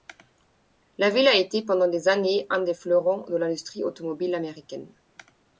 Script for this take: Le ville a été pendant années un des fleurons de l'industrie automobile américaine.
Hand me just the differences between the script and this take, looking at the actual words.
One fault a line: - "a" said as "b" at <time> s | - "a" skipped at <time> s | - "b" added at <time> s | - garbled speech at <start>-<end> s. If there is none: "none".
- "Le" said as "La" at 1.0 s
- "des" added at 1.9 s